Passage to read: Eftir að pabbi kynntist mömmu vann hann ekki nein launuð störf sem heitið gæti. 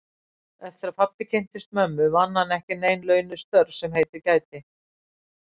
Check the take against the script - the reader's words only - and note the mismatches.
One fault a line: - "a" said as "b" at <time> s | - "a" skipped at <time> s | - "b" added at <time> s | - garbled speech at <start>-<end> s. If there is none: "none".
none